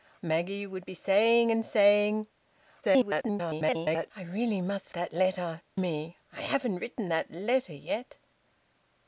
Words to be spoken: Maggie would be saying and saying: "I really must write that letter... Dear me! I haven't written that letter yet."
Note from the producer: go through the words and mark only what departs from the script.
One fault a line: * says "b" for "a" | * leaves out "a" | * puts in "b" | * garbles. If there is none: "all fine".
* garbles
* leaves out "write"
* leaves out "Dear"